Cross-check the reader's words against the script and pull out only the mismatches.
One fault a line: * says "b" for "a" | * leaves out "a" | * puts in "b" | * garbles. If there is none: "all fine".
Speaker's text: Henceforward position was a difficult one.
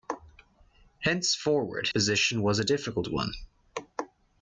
all fine